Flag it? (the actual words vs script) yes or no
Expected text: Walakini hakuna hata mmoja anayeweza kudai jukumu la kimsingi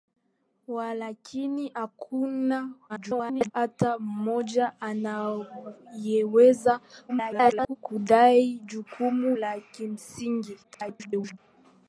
yes